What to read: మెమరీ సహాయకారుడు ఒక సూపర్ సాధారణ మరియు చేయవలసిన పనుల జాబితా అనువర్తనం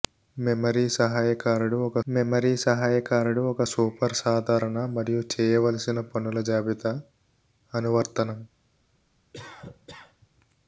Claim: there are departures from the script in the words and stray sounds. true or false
true